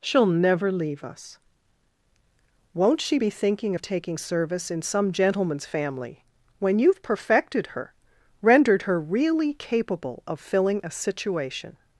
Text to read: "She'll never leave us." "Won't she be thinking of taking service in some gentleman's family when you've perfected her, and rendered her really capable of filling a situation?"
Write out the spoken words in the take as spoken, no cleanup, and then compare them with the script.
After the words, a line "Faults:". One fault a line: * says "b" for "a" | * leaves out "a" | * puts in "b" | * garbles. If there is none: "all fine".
"She'll never leave us." "Won't she be thinking of taking service in some gentleman's family when you've perfected her, rendered her really capable of filling a situation?"
Faults:
* leaves out "and"